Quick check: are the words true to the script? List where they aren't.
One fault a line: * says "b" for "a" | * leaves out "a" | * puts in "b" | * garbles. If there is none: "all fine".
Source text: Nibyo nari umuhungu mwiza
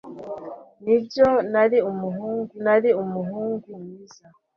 * puts in "nari umuhungu"